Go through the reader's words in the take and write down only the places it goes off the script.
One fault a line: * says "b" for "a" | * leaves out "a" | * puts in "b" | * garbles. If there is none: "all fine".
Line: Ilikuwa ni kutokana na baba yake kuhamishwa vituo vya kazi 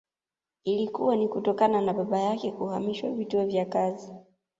all fine